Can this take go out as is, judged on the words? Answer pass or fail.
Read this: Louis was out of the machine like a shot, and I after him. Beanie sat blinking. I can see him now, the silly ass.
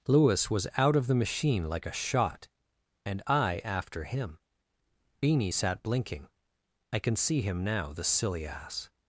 pass